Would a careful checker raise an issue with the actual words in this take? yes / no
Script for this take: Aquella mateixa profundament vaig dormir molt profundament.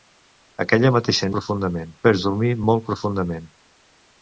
no